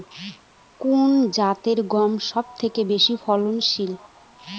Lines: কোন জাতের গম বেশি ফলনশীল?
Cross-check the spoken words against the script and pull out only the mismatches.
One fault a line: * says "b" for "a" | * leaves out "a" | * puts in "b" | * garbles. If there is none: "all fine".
* puts in "সবথেকে"